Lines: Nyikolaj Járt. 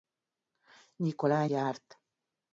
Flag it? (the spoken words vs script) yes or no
no